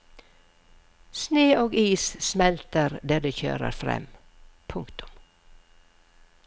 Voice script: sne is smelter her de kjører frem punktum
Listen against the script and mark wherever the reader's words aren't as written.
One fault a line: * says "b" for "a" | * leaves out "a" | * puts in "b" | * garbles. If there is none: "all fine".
* puts in "og"
* says "der" for "her"